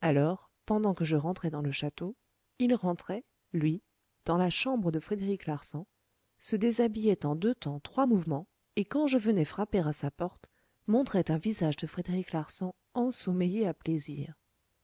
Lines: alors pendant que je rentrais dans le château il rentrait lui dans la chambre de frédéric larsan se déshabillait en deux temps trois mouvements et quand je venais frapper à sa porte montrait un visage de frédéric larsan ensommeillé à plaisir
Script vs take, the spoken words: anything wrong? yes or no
no